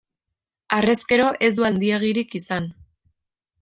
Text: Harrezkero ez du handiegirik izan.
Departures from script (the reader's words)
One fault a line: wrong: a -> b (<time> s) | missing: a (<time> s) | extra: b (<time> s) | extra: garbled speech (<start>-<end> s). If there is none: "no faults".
no faults